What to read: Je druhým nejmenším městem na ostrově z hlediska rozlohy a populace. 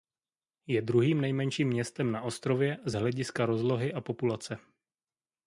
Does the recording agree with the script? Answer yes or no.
yes